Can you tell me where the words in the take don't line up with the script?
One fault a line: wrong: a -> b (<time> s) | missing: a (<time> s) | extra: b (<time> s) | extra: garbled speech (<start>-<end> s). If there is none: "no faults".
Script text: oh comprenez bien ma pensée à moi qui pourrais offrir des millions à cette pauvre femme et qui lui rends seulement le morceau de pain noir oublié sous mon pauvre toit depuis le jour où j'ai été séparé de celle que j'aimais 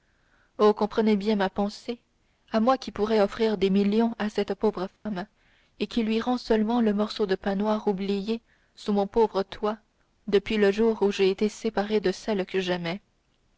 no faults